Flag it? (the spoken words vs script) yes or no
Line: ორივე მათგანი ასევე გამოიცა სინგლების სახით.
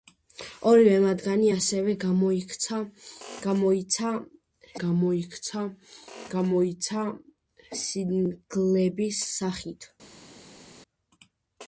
yes